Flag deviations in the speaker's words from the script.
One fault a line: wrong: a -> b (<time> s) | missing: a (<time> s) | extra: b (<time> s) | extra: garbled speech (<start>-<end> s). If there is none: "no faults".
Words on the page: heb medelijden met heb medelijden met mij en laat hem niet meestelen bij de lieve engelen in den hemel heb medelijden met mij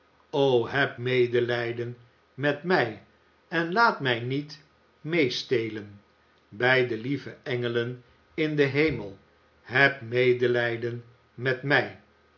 missing: heb medelijden met (2.6 s)
wrong: hem -> mij (4.0 s)